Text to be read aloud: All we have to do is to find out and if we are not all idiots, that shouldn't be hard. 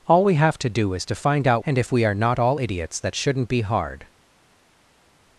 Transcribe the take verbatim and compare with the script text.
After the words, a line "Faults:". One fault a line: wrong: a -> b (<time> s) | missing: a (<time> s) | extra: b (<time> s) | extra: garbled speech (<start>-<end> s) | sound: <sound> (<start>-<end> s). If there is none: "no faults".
All we have to do is to find out and if we are not all idiots, that shouldn't be hard.
Faults:
no faults